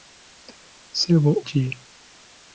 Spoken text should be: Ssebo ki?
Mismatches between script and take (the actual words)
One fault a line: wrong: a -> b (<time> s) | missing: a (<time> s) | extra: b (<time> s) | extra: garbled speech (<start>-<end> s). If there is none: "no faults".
no faults